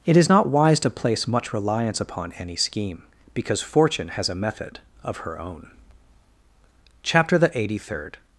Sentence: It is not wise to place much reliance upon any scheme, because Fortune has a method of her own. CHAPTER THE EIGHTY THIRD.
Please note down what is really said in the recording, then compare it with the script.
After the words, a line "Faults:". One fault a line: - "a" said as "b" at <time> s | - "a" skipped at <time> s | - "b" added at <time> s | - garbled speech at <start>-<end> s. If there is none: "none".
It is not wise to place much reliance upon any scheme, because Fortune has a method of her own. CHAPTER THE EIGHTY THIRD.
Faults:
none